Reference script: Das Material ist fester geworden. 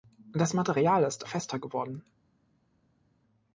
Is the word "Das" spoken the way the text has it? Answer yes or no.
yes